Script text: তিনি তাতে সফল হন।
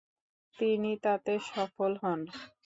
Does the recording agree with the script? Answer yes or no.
yes